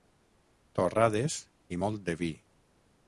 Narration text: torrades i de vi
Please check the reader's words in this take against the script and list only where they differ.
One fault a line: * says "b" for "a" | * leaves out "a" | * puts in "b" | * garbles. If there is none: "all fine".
* puts in "molt"